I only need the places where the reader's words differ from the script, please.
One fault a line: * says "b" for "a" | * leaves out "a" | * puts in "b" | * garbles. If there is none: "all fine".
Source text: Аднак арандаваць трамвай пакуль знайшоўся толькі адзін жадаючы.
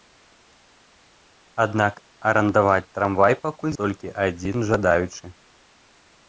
* leaves out "знайшоўся"